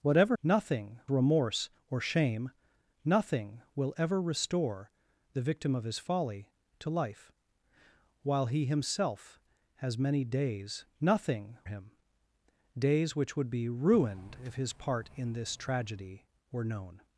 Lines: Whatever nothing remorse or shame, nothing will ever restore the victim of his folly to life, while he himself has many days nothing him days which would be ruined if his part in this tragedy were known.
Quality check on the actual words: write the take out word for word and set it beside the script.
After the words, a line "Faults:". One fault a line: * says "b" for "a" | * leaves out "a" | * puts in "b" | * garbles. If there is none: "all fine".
Whatever nothing remorse or shame, nothing will ever restore the victim of his folly to life, while he himself has many days nothing him days which would be ruined if his part in this tragedy were known.
Faults:
all fine